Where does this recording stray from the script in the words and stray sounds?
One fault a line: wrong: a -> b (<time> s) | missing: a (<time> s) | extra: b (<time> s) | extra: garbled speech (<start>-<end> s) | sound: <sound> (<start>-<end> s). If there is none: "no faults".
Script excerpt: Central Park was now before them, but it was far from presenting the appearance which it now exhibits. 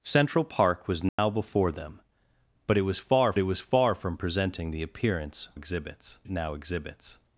sound: dropout (1.1-1.2 s)
extra: it was far (3.4 s)
wrong: which -> exhibits (5.5 s)